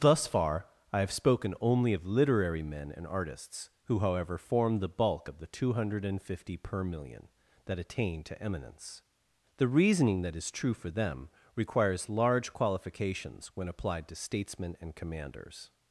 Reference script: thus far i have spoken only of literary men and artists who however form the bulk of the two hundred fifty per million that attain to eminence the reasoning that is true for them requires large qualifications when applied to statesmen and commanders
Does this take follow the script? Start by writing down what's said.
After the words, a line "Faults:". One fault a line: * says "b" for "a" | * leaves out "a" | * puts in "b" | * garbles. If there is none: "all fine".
thus far i have spoken only of literary men and artists who however form the bulk of the two hundred fifty per million that attain to eminence the reasoning that is true for them requires large qualifications when applied to statesmen and commanders
Faults:
all fine